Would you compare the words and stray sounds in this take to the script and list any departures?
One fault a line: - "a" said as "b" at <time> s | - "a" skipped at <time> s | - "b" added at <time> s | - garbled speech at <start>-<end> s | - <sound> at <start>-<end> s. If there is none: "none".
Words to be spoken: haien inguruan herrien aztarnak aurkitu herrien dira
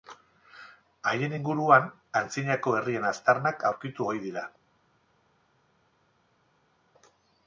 - "antzinako" added at 2.2 s
- "herrien" said as "ohi" at 4.1 s